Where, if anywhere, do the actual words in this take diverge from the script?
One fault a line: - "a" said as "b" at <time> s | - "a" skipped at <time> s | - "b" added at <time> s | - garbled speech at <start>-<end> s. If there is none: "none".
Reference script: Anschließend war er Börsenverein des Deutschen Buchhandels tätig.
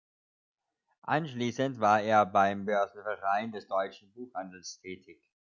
- "beim" added at 2.2 s